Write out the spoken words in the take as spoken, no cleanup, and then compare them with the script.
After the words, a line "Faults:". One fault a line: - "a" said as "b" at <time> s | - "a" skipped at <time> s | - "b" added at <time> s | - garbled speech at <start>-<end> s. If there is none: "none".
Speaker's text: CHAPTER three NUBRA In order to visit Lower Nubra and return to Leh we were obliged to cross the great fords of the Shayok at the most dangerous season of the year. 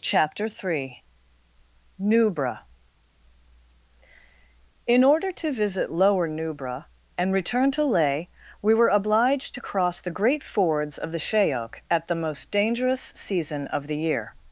CHAPTER three NUBRA In order to visit Lower Nubra and return to Leh we were obliged to cross the great fords of the Shayok at the most dangerous season of the year.
Faults:
none